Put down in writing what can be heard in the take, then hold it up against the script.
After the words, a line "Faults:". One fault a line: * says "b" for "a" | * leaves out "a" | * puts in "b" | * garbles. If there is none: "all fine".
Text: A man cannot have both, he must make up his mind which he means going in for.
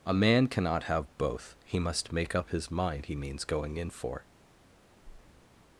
A man cannot have both, he must make up his mind he means going in for.
Faults:
* leaves out "which"